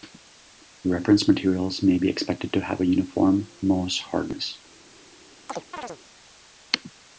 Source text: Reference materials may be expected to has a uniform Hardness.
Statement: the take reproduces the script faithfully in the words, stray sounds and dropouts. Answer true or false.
false